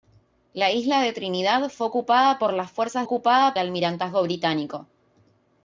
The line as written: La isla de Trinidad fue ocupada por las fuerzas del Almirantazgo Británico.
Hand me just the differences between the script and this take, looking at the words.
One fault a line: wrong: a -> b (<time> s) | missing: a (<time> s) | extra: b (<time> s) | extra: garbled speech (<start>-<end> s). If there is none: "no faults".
wrong: del -> ocupada (3.0 s)